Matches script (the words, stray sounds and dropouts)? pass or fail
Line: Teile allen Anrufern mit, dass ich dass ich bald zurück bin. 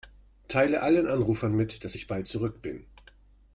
fail